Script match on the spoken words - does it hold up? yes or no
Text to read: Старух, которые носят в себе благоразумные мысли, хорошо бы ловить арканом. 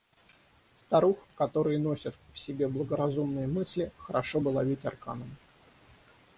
yes